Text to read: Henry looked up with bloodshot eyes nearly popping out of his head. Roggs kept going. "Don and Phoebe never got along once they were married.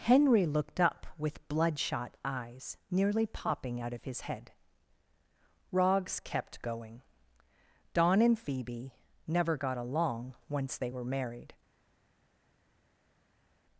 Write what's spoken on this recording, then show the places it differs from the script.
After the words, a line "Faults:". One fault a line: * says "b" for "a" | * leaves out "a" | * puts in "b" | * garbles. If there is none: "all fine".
Henry looked up with bloodshot eyes nearly popping out of his head. Roggs kept going. "Don and Phoebe never got along once they were married.
Faults:
all fine